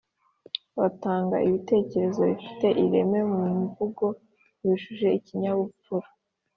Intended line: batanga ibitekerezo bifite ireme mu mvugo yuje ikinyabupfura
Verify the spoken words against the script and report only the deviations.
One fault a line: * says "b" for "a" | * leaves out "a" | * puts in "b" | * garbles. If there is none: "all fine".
all fine